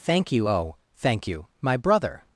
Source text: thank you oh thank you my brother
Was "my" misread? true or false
false